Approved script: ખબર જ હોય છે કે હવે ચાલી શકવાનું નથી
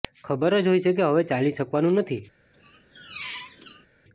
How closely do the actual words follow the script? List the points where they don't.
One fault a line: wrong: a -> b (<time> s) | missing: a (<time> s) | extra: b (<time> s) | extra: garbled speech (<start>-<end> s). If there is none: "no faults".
no faults